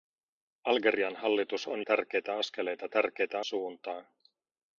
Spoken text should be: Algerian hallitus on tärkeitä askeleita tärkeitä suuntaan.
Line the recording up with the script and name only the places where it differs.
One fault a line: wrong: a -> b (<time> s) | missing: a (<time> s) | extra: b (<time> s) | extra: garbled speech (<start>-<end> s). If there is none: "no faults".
no faults